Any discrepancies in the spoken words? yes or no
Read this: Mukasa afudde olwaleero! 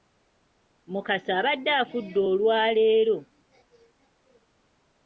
yes